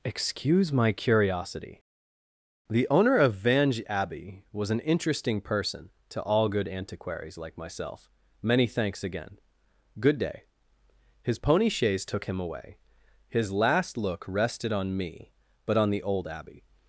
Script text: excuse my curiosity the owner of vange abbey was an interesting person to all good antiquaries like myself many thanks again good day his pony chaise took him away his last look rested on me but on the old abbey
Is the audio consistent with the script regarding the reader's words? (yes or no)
yes